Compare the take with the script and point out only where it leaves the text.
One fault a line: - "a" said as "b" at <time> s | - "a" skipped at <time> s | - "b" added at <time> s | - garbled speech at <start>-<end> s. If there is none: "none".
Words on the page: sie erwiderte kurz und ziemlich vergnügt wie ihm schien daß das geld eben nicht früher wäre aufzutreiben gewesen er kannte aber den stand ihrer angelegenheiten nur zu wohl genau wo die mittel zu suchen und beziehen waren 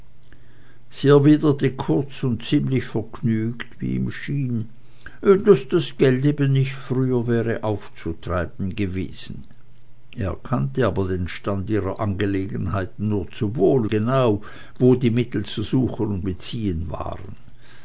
none